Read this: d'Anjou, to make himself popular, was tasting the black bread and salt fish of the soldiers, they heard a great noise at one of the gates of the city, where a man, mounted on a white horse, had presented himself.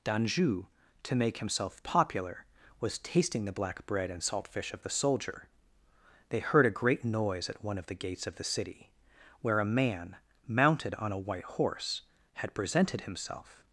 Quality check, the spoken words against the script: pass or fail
fail